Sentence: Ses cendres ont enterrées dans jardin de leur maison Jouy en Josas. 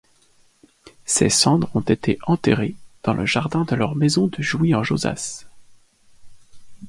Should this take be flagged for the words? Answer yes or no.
yes